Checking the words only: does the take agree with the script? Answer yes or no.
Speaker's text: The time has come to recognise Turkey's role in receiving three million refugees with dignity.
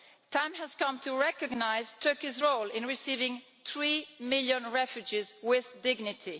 yes